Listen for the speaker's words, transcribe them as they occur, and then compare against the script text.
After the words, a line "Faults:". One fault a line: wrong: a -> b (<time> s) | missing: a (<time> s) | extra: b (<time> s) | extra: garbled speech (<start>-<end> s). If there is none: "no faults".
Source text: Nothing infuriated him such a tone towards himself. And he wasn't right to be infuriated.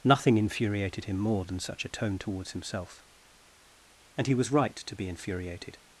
Nothing infuriated him more than such a tone towards himself. And he was right to be infuriated.
Faults:
extra: more than (1.2 s)
wrong: wasn't -> was (4.3 s)